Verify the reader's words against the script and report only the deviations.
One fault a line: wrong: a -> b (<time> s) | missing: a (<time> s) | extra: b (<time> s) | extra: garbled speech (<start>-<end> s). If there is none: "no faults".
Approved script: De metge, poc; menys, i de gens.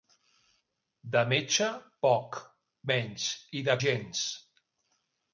no faults